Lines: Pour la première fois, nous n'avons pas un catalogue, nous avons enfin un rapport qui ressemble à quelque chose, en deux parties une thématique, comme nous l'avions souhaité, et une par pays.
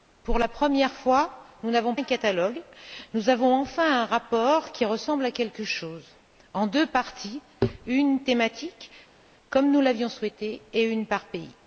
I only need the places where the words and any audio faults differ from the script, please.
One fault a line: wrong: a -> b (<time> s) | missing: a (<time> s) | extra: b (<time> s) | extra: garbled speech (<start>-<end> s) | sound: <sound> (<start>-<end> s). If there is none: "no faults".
missing: pas (1.9 s)